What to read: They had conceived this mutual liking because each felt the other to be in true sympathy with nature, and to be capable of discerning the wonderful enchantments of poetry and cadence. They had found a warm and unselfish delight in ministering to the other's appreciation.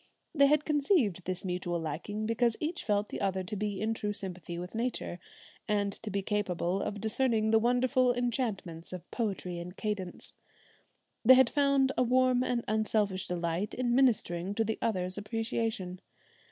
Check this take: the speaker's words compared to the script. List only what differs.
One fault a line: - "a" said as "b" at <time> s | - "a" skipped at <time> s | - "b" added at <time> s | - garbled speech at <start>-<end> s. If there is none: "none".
none